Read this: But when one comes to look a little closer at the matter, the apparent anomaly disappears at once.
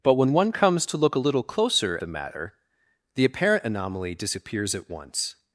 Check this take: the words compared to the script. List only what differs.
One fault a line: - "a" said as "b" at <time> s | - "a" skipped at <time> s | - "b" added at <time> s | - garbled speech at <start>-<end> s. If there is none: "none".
- "at" skipped at 2.0 s